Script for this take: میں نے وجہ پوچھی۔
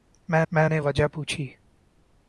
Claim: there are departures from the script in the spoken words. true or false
true